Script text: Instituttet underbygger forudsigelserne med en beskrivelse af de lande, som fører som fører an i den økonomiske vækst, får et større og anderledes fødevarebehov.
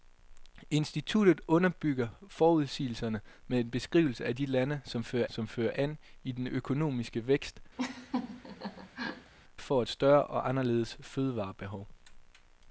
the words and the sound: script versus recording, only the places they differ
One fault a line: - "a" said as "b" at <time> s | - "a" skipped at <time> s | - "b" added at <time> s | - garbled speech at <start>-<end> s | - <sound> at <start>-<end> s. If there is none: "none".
- laugh at 7.8-9.3 s